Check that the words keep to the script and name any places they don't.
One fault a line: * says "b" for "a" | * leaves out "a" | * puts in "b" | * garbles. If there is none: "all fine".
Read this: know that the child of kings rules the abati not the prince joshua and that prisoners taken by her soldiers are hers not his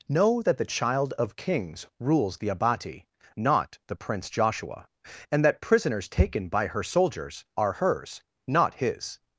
all fine